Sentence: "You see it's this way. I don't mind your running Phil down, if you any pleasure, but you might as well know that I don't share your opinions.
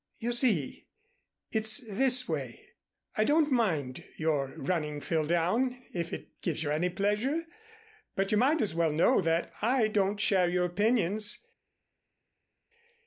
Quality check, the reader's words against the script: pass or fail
fail